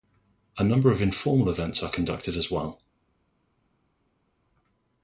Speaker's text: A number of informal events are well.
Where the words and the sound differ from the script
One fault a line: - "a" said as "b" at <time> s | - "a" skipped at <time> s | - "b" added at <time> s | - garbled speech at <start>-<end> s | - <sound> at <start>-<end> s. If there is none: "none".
- "conducted as" added at 1.9 s